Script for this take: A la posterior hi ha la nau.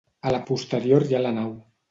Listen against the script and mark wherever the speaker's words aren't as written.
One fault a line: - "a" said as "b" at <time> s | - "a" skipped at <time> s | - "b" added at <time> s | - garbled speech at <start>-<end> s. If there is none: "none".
none